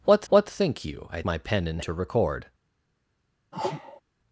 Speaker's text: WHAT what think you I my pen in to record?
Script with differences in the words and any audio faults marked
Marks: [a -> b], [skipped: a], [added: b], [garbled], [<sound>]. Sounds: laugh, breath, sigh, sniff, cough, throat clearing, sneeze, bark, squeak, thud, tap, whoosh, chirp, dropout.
WHAT what think you I my pen in to record? [sneeze]